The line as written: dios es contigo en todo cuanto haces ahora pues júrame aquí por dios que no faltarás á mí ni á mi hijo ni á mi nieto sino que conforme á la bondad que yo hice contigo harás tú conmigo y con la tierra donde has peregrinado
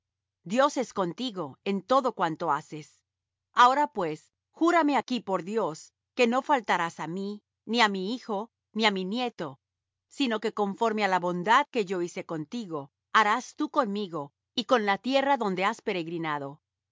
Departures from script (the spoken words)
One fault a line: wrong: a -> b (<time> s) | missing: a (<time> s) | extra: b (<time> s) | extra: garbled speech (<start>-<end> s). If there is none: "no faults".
no faults